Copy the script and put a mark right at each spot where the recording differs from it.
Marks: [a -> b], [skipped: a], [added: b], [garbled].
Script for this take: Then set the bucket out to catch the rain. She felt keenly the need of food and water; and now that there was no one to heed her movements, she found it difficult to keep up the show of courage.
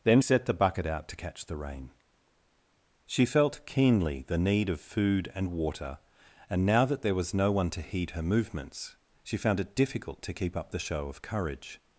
Then set the bucket out to catch the rain. She felt keenly the need of food and water; and now that there was no one to heed her movements, she found it difficult to keep up the show of courage.